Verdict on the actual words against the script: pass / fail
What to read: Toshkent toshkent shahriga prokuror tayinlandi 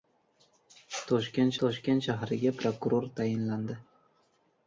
pass